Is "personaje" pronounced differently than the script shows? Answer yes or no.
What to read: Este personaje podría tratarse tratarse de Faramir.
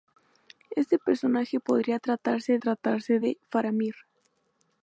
no